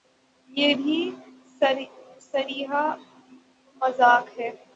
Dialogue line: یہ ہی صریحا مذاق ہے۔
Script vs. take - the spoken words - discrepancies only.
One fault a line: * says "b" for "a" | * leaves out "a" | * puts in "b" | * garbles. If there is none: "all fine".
* says "بھی" for "ہی"